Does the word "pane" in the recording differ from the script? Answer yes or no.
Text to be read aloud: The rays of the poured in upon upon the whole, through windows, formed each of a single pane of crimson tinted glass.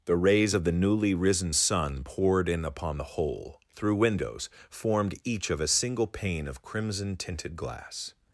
no